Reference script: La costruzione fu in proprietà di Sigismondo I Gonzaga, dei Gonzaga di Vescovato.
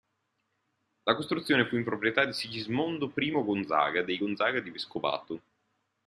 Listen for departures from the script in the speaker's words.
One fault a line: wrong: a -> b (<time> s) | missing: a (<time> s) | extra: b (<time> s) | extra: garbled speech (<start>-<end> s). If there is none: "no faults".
no faults